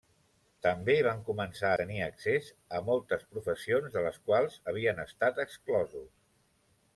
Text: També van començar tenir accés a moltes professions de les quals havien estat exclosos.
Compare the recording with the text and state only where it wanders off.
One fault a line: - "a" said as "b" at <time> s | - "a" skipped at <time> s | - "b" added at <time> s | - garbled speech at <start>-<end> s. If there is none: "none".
none